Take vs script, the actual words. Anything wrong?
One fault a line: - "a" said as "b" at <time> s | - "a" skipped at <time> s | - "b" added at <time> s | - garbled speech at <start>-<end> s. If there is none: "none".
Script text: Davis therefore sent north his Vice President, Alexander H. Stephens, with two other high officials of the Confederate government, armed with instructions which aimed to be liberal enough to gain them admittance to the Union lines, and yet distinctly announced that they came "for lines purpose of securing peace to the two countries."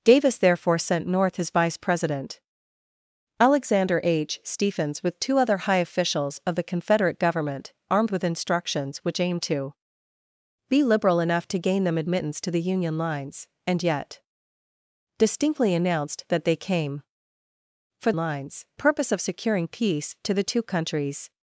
none